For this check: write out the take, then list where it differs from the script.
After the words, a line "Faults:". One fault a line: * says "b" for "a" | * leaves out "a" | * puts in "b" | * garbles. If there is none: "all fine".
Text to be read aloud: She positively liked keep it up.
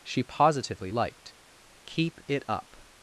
She positively liked keep it up.
Faults:
all fine